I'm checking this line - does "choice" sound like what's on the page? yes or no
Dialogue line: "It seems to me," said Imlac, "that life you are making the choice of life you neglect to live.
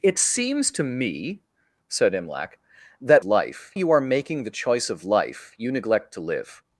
yes